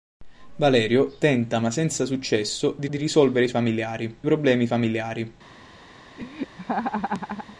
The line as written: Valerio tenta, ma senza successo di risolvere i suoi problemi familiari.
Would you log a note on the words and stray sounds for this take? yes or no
yes